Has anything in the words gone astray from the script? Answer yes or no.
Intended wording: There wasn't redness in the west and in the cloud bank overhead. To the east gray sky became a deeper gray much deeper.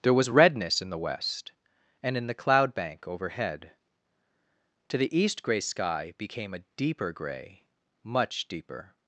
yes